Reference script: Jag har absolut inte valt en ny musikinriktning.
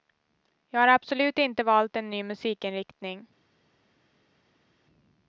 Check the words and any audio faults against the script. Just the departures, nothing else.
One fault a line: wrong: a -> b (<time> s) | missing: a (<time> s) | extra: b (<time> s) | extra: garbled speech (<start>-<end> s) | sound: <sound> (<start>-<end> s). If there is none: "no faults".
no faults